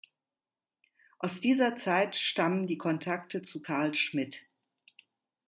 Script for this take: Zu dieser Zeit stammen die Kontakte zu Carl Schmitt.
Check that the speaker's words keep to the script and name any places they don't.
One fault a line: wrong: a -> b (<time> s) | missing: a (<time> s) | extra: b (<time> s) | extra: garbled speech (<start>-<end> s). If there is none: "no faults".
wrong: Zu -> Aus (1.2 s)